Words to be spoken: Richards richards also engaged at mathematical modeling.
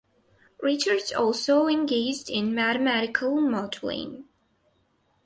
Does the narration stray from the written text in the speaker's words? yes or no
yes